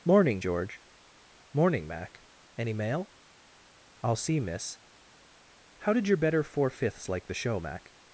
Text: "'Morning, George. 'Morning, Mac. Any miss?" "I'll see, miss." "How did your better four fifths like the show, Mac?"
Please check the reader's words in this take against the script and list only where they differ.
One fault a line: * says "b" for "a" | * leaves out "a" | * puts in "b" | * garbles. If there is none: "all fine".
* says "mail" for "miss"